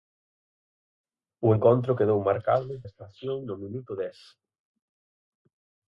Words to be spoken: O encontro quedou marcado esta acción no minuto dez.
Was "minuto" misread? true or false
false